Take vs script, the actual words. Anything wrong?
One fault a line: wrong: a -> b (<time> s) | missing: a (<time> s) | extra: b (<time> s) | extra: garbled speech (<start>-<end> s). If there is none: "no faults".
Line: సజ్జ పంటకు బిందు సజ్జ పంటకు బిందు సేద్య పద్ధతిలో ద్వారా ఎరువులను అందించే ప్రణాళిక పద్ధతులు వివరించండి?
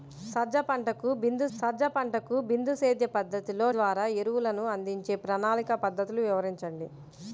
no faults